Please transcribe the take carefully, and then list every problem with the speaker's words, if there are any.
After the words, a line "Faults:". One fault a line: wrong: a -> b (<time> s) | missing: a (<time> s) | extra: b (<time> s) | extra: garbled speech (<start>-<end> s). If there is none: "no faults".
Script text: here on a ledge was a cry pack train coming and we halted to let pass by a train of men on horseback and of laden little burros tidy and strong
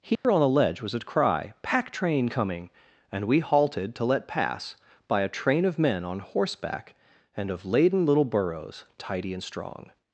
here on the ledge was a cry pack train coming and we halted to let pass by a train of men on horseback and of laden little burros tidy and strong
Faults:
wrong: a -> the (0.4 s)